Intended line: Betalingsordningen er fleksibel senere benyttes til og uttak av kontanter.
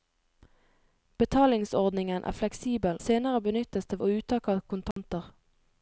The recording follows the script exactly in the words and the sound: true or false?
false